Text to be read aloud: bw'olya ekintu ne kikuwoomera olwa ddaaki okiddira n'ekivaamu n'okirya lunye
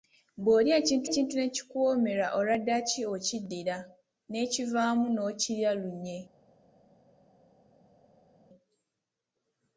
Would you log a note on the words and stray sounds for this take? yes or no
yes